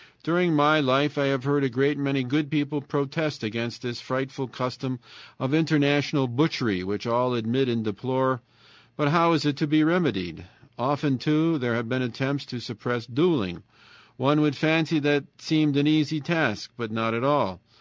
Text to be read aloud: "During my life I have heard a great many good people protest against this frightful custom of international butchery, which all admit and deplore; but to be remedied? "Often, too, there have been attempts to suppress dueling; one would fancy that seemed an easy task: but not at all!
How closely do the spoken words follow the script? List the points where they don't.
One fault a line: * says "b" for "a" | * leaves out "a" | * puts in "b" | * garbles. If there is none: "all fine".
* puts in "how is it"